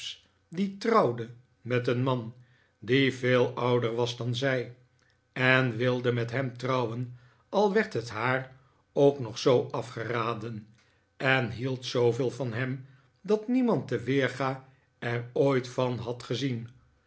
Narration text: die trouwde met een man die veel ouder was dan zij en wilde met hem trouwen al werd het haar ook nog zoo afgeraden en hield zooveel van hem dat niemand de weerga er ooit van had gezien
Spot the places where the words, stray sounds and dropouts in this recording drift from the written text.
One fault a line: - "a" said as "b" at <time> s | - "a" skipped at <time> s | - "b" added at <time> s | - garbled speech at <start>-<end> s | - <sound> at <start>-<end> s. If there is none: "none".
none